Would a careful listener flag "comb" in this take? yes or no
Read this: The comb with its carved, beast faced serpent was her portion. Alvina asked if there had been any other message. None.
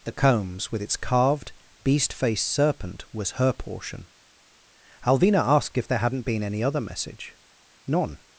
yes